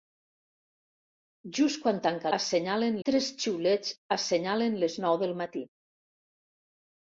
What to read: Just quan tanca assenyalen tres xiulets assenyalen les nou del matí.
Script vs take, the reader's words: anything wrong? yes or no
no